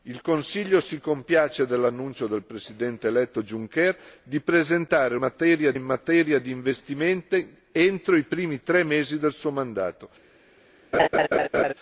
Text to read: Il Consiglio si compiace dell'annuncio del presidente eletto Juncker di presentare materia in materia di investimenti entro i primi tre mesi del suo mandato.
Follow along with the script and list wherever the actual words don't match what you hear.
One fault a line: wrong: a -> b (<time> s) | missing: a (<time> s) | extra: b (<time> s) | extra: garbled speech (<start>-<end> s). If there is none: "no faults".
no faults